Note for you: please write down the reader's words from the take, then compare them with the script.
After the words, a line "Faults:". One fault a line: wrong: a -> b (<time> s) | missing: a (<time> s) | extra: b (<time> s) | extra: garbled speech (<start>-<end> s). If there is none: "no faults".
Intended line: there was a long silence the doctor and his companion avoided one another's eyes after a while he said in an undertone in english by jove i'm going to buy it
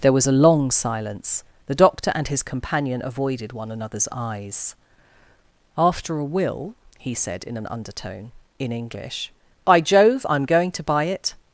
there was a long silence the doctor and his companion avoided one another's eyes after a will he said in an undertone in english by jove i'm going to buy it
Faults:
wrong: while -> will (6.2 s)